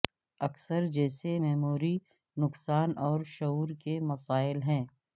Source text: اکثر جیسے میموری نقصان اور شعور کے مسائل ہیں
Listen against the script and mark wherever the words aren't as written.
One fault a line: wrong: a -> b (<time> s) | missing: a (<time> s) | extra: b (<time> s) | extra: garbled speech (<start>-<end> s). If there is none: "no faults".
no faults